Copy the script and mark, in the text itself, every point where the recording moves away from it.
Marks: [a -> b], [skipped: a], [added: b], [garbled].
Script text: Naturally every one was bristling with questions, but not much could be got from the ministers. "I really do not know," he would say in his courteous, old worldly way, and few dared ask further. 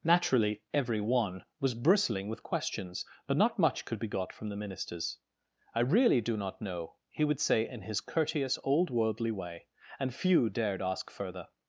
Naturally every one was bristling with questions, but not much could be got from the ministers. "I really do not know," he would say in his courteous, old worldly way, and few dared ask further.